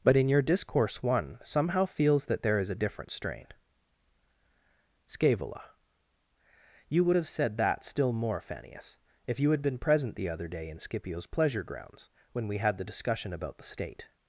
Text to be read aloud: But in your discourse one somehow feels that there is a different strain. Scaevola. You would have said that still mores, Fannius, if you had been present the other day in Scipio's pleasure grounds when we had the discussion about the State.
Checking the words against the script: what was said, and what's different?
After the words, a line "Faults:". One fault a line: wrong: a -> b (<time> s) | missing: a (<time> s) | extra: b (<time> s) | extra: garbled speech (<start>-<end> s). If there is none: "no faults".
But in your discourse one somehow feels that there is a different strain. Scaevola. You would have said that still more, Fannius, if you had been present the other day in Scipio's pleasure grounds when we had the discussion about the State.
Faults:
wrong: mores -> more (8.1 s)